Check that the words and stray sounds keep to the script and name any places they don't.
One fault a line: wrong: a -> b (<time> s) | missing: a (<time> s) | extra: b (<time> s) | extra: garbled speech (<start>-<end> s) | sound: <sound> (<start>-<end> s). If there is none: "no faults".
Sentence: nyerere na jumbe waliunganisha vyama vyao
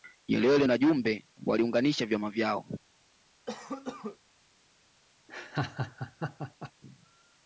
sound: cough (3.5-4.2 s)
sound: laugh (5.3-6.7 s)